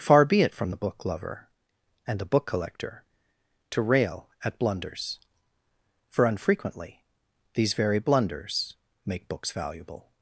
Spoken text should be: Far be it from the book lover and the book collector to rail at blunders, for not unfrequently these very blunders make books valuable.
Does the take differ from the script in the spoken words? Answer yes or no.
yes